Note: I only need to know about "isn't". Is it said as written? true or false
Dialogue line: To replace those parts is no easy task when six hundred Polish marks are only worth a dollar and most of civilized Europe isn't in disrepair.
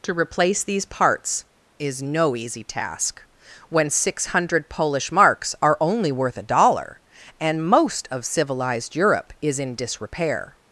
false